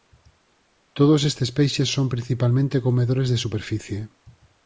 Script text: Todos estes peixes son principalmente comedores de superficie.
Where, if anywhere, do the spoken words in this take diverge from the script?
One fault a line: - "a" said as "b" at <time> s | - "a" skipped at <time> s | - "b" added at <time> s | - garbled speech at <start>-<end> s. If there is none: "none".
none